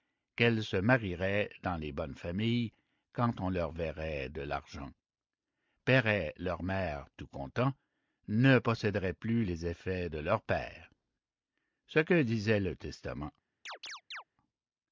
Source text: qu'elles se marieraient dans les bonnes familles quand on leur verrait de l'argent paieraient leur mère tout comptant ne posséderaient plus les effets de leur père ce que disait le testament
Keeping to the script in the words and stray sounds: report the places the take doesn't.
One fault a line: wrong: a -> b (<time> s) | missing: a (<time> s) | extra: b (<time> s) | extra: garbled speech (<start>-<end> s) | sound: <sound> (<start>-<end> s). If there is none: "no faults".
sound: chirp (13.7-14.2 s)